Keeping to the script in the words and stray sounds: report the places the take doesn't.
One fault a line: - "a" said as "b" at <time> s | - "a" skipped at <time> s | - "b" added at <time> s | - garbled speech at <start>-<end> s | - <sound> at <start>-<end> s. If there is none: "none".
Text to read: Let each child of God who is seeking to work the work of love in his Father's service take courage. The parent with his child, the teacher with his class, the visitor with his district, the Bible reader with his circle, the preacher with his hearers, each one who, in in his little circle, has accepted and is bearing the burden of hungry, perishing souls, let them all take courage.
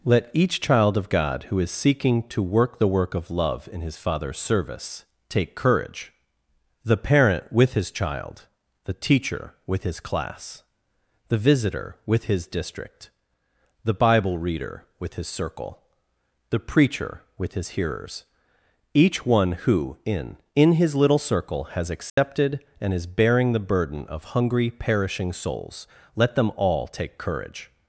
- dropout at 22.1-22.2 s